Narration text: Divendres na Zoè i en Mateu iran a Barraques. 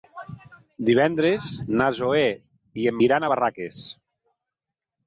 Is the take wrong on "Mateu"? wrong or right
wrong